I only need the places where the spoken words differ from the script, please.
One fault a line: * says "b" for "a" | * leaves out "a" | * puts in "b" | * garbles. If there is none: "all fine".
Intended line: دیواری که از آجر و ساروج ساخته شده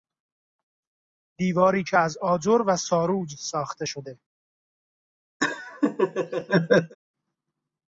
all fine